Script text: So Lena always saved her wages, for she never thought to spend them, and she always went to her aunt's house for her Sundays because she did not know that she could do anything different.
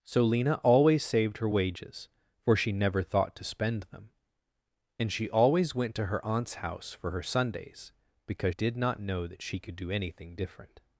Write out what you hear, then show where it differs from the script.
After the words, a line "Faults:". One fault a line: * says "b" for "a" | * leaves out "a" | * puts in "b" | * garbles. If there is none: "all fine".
So Lena always saved her wages, for she never thought to spend them, and she always went to her aunt's house for her Sundays because did not know that she could do anything different.
Faults:
* leaves out "she"